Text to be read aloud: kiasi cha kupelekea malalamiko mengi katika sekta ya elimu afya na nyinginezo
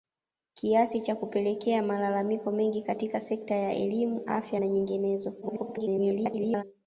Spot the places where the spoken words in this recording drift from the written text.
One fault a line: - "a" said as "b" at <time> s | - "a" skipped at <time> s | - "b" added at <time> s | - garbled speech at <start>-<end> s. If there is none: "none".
- garbled speech at 5.4-6.6 s